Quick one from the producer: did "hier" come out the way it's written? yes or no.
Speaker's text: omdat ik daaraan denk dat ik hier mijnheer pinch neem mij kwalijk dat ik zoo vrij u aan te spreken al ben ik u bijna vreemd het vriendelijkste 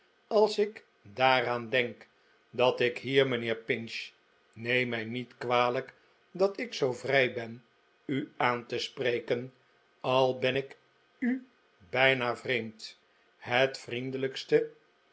yes